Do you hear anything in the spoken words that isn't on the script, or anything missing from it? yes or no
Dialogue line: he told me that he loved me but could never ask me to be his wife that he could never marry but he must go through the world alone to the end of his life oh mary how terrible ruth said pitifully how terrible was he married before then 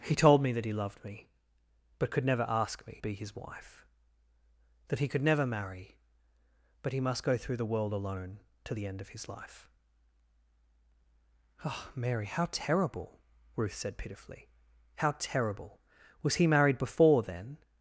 yes